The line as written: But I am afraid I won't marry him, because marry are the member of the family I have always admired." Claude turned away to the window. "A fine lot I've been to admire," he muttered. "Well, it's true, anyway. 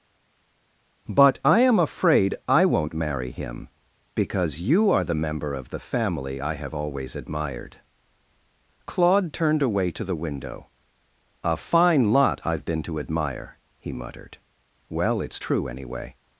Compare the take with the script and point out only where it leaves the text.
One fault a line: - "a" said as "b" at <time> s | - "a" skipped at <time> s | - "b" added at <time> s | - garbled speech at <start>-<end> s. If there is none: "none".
- "marry" said as "you" at 4.6 s